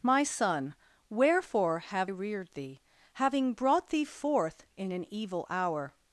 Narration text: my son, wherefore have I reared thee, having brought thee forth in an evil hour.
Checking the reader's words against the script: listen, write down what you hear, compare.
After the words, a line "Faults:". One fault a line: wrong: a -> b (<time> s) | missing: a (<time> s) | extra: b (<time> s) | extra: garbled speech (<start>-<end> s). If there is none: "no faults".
my son, wherefore have reared thee, having brought thee forth in an evil hour.
Faults:
missing: I (2.1 s)